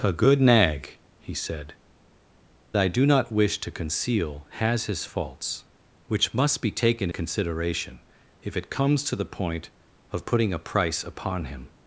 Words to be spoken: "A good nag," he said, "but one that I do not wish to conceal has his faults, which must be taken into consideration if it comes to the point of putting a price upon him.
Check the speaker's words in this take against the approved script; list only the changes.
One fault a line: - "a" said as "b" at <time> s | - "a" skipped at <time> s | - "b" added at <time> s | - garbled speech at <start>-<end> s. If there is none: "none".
- "but one that" skipped at 1.8 s
- "into" skipped at 7.1 s